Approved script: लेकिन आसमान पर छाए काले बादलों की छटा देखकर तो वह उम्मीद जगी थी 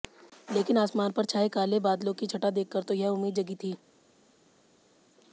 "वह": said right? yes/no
no